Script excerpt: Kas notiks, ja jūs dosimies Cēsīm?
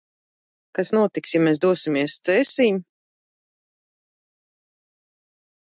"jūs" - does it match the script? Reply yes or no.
no